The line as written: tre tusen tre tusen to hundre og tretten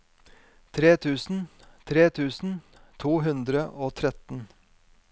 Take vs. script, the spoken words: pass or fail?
pass